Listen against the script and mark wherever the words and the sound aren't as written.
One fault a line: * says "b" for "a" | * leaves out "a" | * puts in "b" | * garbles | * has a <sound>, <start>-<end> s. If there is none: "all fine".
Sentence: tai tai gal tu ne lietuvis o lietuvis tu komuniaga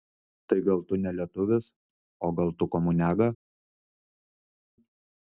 * leaves out "tai"
* says "gal" for "lietuvis"